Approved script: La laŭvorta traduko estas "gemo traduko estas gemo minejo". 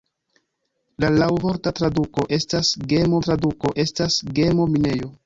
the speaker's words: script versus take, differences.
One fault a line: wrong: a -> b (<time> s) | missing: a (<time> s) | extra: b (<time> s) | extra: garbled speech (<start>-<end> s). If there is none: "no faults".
no faults